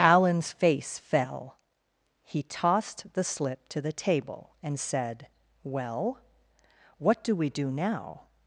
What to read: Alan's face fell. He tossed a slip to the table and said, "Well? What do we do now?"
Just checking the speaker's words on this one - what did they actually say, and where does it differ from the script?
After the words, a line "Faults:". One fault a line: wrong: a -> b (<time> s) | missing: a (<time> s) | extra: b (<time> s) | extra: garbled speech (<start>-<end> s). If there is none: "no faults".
Alan's face fell. He tossed the slip to the table and said, "Well? What do we do now?"
Faults:
wrong: a -> the (3.1 s)